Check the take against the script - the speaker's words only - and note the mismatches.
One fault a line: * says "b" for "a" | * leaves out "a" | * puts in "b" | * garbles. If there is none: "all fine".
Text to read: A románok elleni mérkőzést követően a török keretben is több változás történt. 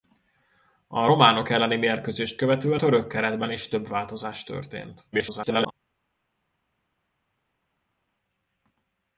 * leaves out "a"
* garbles